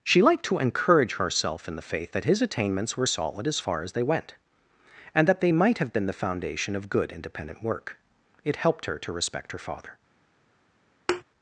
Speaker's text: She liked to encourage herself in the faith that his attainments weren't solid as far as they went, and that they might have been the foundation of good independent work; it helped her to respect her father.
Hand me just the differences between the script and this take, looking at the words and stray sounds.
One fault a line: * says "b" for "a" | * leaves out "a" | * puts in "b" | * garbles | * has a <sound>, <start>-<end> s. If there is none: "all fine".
* says "were" for "weren't"
* has a thud, 11.1-11.2 s